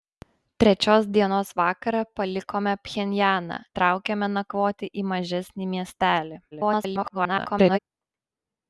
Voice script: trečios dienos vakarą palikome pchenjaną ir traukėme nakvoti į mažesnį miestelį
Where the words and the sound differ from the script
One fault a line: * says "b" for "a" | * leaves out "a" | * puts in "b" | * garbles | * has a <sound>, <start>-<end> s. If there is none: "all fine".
* leaves out "ir"
* garbles